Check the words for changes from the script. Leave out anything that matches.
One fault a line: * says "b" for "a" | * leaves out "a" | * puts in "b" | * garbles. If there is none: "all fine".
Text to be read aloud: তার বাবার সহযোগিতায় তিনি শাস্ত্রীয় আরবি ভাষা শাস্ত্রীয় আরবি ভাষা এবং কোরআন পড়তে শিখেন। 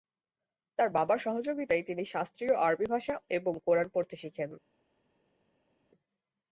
* leaves out "শাস্ত্রীয় আরবি ভাষা"